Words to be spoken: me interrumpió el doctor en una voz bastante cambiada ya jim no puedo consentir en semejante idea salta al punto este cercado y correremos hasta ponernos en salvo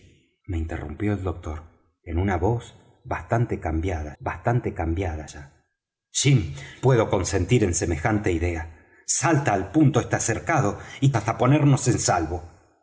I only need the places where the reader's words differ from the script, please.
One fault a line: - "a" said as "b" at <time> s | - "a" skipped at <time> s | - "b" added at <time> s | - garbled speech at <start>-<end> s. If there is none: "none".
- "bastante cambiada" added at 4.2 s
- "no" skipped at 6.5 s
- "correremos" skipped at 11.1 s